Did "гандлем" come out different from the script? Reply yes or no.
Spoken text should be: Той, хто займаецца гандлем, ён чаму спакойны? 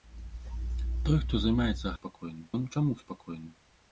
yes